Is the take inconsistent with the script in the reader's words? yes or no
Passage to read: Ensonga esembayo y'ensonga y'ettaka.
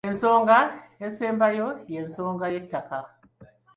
no